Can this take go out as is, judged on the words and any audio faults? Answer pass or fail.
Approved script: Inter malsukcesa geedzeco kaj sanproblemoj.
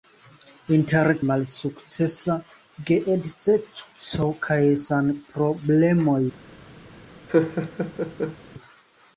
fail